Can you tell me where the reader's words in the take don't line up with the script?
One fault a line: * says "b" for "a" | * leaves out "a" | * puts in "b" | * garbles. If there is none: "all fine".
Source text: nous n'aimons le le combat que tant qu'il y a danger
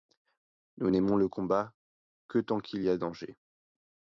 * leaves out "le"